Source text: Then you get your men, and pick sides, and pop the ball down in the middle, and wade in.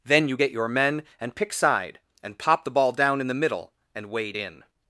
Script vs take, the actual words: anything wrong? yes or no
yes